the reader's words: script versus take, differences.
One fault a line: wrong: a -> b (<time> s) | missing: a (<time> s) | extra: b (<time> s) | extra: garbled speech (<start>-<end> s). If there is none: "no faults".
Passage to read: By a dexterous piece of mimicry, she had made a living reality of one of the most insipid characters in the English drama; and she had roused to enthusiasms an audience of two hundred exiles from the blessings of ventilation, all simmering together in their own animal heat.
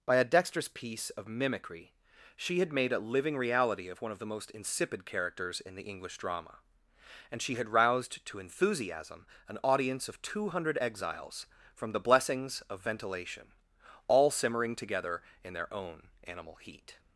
wrong: enthusiasms -> enthusiasm (8.4 s)